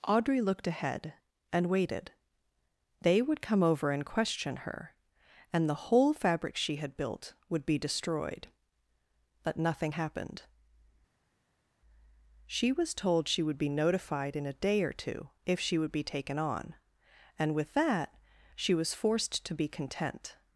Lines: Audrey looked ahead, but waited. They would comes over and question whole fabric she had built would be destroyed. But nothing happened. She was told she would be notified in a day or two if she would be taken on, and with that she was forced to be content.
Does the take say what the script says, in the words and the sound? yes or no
no